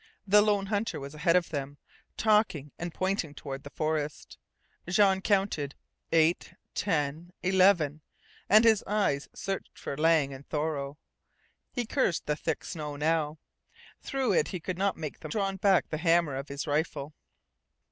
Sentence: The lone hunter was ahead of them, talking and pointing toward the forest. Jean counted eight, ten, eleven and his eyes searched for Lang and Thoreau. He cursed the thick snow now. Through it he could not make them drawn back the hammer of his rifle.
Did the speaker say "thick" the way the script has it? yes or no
yes